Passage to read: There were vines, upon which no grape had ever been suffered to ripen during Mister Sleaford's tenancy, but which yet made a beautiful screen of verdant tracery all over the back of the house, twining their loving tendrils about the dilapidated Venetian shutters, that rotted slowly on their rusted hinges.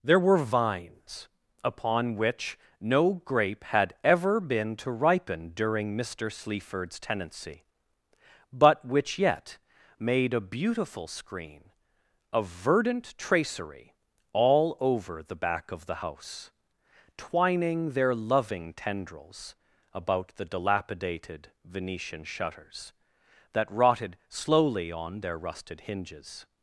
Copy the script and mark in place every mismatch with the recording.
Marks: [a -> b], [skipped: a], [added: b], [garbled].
There were vines, upon which no grape had ever been [skipped: suffered] to ripen during Mister Sleaford's tenancy, but which yet made a beautiful screen of verdant tracery all over the back of the house, twining their loving tendrils about the dilapidated Venetian shutters, that rotted slowly on their rusted hinges.